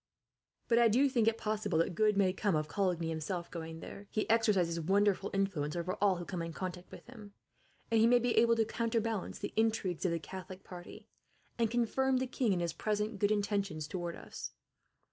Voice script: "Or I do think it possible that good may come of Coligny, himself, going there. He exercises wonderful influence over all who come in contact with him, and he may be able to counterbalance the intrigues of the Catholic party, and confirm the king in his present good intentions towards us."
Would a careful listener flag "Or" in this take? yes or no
yes